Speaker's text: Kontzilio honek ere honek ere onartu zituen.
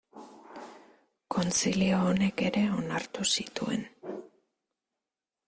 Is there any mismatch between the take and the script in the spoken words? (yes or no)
yes